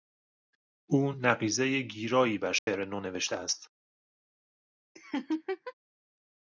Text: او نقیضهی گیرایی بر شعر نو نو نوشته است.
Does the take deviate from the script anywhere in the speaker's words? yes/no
yes